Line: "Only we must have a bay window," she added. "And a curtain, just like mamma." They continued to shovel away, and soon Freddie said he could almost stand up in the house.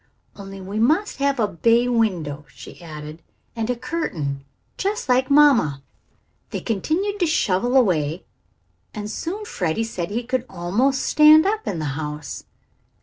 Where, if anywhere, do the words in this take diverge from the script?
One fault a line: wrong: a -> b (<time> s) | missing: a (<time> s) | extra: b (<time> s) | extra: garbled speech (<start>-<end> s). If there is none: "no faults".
no faults